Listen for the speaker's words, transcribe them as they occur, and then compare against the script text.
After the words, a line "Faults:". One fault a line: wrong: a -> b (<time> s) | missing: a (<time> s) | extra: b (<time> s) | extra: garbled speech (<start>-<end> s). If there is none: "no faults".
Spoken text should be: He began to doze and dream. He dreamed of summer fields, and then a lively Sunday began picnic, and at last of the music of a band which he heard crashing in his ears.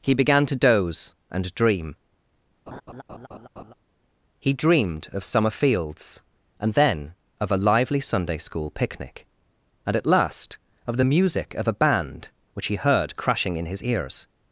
He began to doze and dream. He dreamed of summer fields, and then of a lively Sunday school picnic, and at last of the music of a band which he heard crashing in his ears.
Faults:
extra: of (7.4 s)
wrong: began -> school (8.4 s)